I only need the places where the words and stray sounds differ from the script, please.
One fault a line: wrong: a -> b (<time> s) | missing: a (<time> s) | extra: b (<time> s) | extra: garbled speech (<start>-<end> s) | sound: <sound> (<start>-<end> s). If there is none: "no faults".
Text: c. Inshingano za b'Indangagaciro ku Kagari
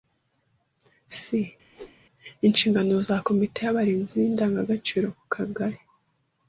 sound: whoosh (1.7-2.0 s)
extra: komite y'Abarinzi (3.3 s)